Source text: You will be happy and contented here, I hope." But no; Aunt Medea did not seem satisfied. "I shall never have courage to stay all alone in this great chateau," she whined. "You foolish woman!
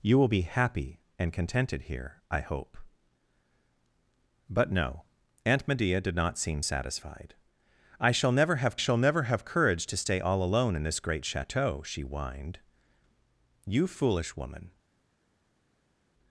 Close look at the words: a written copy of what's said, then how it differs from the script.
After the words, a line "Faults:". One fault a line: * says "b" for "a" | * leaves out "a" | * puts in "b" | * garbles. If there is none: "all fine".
You will be happy and contented here, I hope." But no; Aunt Medea did not seem satisfied. "I shall never have shall never have courage to stay all alone in this great chateau," she whined. "You foolish woman!
Faults:
* puts in "shall never have"